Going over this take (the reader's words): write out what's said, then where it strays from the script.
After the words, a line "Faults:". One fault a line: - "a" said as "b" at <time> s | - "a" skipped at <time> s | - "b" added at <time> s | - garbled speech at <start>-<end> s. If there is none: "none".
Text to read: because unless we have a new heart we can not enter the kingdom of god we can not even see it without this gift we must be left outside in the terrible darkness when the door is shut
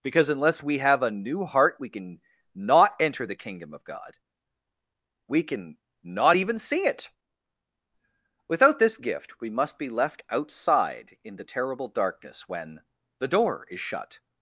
because unless we have a new heart we can not enter the kingdom of god we can not even see it without this gift we must be left outside in the terrible darkness when the door is shut
Faults:
none